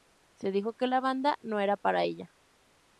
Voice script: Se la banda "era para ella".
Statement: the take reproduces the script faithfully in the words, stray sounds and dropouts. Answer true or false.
false